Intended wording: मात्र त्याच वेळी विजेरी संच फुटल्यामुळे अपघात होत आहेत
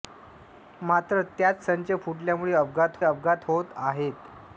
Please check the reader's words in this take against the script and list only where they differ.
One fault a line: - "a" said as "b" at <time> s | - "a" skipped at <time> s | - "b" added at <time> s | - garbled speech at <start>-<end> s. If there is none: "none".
- "वेळी विजेरी" skipped at 1.6 s
- "अपघात" added at 3.0 s